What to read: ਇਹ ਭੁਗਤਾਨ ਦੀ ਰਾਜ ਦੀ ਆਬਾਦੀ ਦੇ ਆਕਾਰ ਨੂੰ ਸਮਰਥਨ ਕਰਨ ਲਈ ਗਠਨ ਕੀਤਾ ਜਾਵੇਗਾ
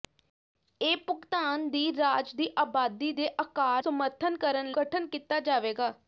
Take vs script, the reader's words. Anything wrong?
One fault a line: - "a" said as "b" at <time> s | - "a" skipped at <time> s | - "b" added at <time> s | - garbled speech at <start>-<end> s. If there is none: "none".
- "ਨੂੰ" skipped at 3.8 s
- "ਲਈ" skipped at 4.7 s